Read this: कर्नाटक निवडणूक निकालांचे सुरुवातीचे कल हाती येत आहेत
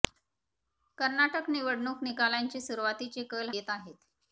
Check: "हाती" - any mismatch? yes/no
yes